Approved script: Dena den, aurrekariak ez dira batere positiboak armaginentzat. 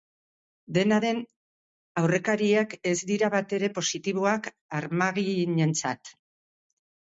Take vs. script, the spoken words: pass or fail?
pass